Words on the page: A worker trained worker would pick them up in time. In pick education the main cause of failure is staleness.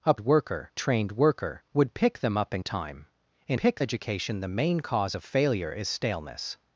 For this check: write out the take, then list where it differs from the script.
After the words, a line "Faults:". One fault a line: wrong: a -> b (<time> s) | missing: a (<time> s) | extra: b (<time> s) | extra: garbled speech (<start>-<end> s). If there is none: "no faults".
A worker trained worker would pick them up in time. In pick education the main cause of failure is staleness.
Faults:
no faults